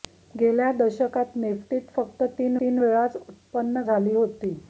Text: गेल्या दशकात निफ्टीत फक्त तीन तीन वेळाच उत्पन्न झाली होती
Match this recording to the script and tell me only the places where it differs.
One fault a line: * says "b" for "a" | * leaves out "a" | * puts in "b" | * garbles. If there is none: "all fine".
all fine